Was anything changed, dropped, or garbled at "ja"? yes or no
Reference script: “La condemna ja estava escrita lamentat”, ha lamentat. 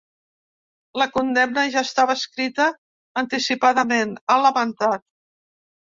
no